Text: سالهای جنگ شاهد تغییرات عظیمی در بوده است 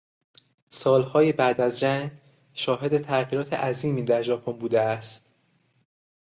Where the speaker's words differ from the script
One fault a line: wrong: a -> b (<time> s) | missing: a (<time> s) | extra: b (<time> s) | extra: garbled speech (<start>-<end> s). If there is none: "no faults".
extra: بعد از (1.3 s)
extra: ژاپن (4.2 s)